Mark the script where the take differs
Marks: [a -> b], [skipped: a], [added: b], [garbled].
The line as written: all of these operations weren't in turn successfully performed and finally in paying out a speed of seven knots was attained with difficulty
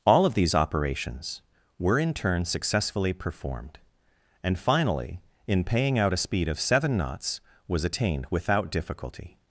all of these operations [weren't -> were] in turn successfully performed and finally in paying out a speed of seven knots was attained [with -> without] difficulty